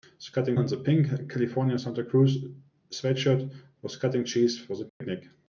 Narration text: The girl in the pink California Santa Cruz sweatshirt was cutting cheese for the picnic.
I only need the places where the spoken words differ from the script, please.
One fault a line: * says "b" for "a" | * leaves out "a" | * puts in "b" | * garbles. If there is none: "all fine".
* says "cutting" for "girl"